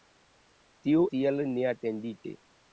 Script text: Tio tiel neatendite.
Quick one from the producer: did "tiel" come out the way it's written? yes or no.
yes